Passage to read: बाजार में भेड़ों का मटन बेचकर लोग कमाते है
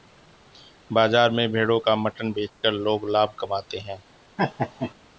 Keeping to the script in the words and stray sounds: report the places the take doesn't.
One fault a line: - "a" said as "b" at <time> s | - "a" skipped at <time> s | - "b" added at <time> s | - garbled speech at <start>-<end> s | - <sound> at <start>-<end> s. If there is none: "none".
- dropout at 2.5-2.6 s
- "लाभ" added at 3.1 s
- laugh at 4.4-4.9 s